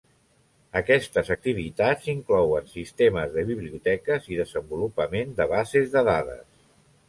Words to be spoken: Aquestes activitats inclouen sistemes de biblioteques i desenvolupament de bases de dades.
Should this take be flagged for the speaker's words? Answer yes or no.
no